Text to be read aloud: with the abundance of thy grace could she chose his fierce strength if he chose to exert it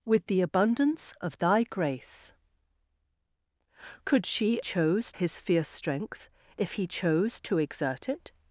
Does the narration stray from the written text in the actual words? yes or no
no